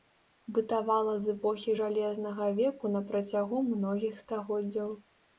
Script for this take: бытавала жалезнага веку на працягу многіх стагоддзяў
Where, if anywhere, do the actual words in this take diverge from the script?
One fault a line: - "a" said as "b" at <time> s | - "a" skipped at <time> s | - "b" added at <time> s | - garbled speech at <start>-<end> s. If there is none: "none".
- "з эпохі" added at 1.2 s